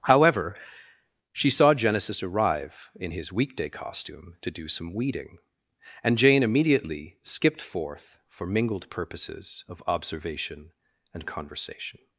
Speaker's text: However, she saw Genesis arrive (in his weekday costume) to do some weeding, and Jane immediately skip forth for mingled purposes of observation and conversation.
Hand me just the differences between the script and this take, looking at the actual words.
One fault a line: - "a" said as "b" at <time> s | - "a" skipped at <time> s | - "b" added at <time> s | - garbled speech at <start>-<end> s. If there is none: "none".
- "skip" said as "skipped" at 7.2 s